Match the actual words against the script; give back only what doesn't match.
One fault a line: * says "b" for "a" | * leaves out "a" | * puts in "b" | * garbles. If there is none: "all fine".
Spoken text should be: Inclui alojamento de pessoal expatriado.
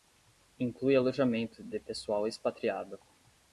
all fine